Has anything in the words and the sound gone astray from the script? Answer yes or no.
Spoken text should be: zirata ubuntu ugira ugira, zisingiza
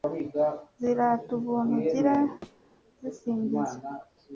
yes